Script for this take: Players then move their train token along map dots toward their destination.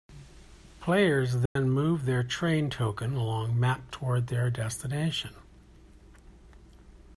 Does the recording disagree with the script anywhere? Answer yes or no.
yes